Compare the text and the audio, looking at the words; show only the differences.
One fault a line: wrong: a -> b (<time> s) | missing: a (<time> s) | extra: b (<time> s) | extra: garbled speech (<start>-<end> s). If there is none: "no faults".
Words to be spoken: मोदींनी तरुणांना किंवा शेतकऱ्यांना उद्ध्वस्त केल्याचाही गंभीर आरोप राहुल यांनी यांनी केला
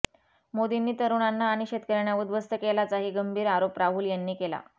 wrong: किंवा -> आणि (1.5 s)
missing: यांनी (4.3 s)